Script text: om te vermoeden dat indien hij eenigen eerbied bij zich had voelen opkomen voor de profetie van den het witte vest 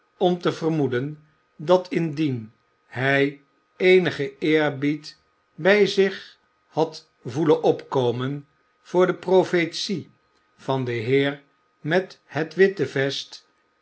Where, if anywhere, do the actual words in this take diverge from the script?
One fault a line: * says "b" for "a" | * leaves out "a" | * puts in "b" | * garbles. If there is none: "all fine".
* puts in "heer met"